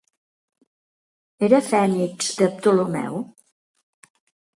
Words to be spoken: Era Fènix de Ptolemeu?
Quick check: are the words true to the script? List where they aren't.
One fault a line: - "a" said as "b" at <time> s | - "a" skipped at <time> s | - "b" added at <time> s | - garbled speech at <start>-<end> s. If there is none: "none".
none